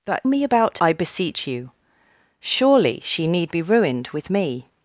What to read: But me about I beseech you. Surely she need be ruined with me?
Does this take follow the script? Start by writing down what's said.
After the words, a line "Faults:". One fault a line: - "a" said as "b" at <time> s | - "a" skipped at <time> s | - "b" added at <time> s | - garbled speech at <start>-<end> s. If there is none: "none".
But me about I beseech you. Surely she need be ruined with me?
Faults:
none